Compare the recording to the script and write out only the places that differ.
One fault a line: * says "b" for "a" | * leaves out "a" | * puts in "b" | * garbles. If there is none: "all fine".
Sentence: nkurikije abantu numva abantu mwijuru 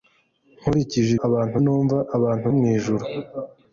all fine